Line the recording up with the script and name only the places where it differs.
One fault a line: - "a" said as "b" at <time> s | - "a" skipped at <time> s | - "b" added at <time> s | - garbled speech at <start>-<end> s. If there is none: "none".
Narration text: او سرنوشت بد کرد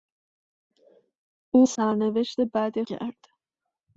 none